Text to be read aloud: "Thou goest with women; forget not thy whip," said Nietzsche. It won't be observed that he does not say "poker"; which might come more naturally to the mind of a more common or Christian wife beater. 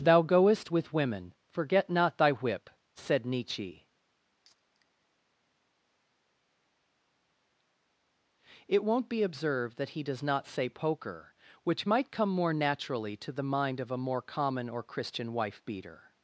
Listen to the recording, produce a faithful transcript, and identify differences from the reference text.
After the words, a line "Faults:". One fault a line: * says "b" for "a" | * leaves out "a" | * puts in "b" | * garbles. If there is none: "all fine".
"Thou goest with women; forget not thy whip," said Nietzsche. It won't be observed that he does not say "poker"; which might come more naturally to the mind of a more common or Christian wife beater.
Faults:
all fine